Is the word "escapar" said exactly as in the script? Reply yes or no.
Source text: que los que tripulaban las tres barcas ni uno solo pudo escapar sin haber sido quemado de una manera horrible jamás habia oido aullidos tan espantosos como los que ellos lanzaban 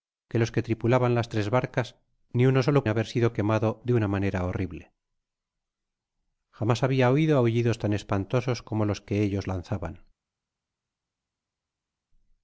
no